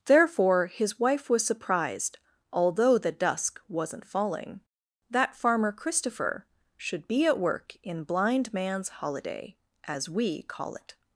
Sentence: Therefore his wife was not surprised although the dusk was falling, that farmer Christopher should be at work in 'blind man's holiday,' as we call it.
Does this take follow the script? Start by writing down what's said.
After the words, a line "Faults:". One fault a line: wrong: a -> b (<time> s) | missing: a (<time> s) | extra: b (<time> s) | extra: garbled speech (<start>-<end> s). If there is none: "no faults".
Therefore his wife was surprised although the dusk wasn't falling, that farmer Christopher should be at work in 'blind man's holiday,' as we call it.
Faults:
missing: not (1.4 s)
wrong: was -> wasn't (3.7 s)